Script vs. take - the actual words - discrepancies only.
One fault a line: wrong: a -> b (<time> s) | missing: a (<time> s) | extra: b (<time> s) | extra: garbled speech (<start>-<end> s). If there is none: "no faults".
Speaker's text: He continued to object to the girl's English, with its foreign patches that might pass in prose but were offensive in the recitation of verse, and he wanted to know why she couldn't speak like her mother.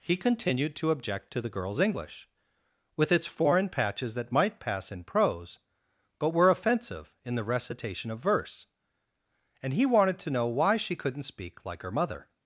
no faults